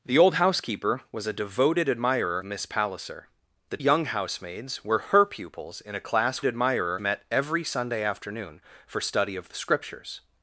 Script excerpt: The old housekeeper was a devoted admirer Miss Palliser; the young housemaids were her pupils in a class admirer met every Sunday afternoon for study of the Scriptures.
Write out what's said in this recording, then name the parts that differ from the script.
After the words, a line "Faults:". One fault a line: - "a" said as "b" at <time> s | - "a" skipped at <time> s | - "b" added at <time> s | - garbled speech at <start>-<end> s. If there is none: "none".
The old housekeeper was a devoted admirer Miss Palliser; the young housemaids were her pupils in a class admirer met every Sunday afternoon for study of the Scriptures.
Faults:
none